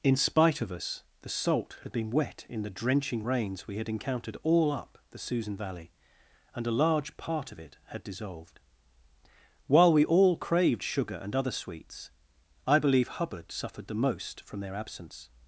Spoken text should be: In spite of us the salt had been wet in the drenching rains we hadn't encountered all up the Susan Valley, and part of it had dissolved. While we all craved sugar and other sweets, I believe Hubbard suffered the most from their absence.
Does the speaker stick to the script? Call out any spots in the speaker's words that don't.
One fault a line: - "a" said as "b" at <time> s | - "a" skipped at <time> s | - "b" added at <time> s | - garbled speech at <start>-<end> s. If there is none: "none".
- "hadn't" said as "had" at 3.8 s
- "a large" added at 6.7 s